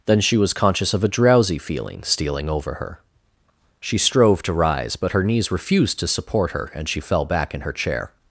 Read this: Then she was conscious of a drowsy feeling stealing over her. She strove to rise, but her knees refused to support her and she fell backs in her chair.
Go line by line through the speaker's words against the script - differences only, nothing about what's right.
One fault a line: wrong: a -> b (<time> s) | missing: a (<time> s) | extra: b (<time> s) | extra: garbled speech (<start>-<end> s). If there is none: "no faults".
wrong: backs -> back (7.2 s)